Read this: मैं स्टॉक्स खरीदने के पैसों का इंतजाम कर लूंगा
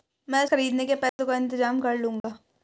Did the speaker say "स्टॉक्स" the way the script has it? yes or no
no